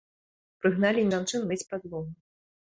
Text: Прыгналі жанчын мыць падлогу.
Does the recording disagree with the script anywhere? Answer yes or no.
no